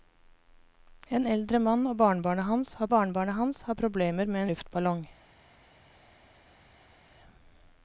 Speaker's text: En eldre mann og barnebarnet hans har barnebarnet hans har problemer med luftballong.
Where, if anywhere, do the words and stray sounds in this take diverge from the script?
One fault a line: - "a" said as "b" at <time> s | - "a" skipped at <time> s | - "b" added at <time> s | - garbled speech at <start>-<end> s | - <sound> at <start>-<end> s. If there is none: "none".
none